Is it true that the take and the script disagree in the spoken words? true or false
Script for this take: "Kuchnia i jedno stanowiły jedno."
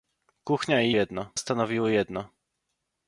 false